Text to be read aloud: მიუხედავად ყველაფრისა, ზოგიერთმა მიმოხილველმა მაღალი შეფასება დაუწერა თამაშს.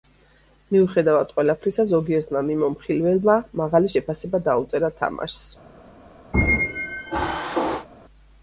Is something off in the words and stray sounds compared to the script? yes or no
yes